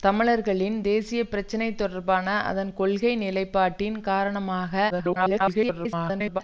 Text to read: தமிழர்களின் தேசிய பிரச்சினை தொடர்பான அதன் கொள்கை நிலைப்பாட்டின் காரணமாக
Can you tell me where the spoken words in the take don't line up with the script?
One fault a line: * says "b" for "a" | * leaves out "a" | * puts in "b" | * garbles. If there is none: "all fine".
* garbles